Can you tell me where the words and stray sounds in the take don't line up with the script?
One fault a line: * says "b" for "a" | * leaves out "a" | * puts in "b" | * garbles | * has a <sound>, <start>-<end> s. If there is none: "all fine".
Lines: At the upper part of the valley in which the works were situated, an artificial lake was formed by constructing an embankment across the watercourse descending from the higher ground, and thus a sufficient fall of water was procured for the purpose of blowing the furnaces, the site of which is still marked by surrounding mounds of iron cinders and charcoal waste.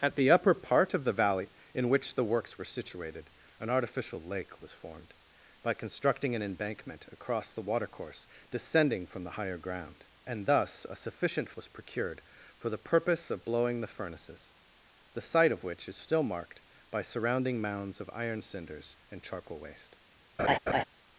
* leaves out "fall of water"
* has a laugh, 20.4-20.8 s